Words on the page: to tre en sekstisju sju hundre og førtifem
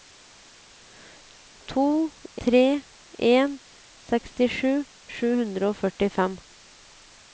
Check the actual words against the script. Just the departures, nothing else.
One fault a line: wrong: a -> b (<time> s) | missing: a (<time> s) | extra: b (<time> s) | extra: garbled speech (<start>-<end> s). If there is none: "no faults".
no faults